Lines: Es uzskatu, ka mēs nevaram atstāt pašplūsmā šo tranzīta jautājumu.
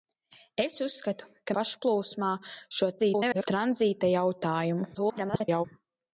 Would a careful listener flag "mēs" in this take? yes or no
yes